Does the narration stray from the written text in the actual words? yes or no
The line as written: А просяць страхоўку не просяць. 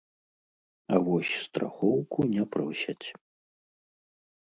yes